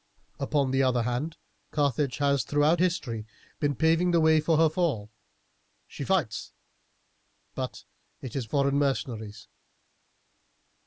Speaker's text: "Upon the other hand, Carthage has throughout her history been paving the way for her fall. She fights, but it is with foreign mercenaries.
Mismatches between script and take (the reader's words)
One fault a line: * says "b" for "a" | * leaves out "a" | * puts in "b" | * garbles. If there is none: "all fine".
* leaves out "her"
* leaves out "with"